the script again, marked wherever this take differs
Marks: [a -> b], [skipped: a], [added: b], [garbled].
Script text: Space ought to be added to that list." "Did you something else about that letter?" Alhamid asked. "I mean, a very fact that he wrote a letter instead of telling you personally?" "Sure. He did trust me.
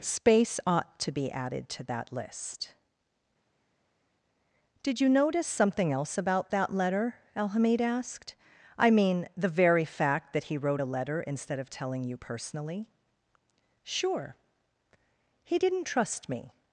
Space ought to be added to that list." "Did you [added: notice] something else about that letter?" Alhamid asked. "I mean, [a -> the] very fact that he wrote a letter instead of telling you personally?" "Sure. He [did -> didn't] trust me.